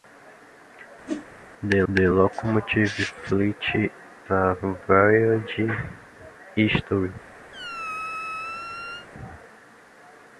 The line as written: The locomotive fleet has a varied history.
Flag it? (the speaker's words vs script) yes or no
yes